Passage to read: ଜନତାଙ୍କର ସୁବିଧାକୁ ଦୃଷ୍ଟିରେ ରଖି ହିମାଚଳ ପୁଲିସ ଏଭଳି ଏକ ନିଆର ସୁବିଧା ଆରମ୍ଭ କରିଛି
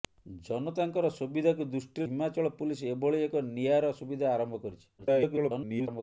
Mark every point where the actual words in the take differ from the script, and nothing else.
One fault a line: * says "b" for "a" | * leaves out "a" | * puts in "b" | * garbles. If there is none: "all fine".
* leaves out "ରଖି"
* garbles